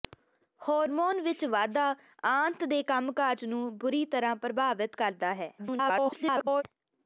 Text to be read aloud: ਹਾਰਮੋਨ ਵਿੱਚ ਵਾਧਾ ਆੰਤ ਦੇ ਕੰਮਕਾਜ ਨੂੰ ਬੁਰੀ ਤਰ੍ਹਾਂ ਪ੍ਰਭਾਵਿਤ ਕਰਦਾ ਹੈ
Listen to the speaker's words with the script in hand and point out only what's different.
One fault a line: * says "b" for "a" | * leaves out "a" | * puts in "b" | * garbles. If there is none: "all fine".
* garbles